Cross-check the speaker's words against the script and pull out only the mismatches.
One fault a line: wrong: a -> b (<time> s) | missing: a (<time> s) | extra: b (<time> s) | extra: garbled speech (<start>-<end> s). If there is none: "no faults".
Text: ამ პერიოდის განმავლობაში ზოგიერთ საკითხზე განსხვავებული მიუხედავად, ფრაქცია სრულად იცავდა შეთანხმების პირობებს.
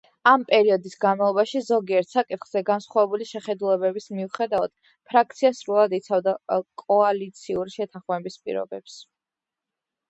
extra: შეხედულებების (3.3 s)
extra: კოალიციური (6.9 s)